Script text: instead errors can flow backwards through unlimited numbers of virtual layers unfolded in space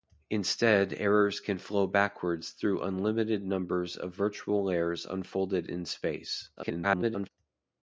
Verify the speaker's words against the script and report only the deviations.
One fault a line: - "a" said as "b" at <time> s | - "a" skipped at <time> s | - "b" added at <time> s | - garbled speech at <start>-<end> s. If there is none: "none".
- garbled speech at 6.6-7.3 s